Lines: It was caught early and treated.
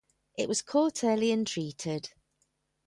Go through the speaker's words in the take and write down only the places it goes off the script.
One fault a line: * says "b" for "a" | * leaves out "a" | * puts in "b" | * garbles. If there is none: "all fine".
all fine